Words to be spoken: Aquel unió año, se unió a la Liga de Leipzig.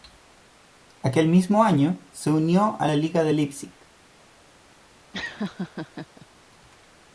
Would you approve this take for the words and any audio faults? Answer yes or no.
no